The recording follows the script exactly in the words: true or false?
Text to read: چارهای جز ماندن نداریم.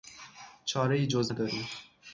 false